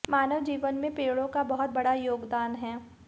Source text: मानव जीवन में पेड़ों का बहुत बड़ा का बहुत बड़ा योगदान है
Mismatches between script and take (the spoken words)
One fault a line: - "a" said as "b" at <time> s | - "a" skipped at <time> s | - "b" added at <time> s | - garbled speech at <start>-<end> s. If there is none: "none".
- "का बहुत बड़ा" skipped at 1.9 s